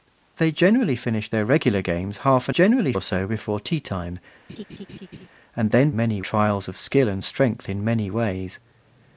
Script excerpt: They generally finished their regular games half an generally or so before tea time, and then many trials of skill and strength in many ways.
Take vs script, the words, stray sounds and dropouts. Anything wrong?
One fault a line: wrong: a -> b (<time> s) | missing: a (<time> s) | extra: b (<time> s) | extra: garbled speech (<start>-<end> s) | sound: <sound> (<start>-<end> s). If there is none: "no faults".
sound: laugh (4.5-5.3 s)